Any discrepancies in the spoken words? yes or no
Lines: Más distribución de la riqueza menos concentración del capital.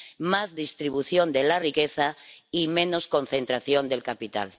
yes